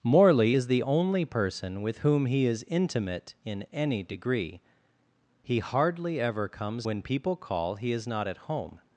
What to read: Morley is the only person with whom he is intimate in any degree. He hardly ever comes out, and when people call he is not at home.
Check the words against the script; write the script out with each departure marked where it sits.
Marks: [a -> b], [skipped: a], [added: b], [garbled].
Morley is the only person with whom he is intimate in any degree. He hardly ever comes [skipped: out, and] when people call he is not at home.